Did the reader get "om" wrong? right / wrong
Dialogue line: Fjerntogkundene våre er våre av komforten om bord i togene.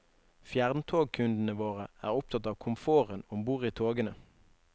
right